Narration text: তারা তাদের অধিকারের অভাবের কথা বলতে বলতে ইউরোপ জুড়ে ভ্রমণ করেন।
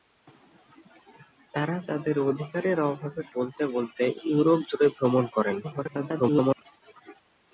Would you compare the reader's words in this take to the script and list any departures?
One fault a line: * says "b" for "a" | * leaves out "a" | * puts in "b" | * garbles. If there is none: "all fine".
* leaves out "কথা"
* garbles